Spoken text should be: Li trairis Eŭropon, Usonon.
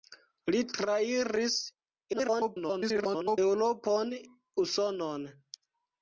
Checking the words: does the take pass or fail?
fail